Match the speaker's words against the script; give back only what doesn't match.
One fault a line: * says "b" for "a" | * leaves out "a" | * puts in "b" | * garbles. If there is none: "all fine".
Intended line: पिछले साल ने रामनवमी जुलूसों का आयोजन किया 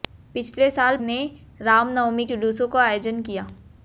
all fine